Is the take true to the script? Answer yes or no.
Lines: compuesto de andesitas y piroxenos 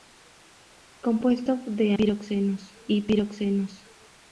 no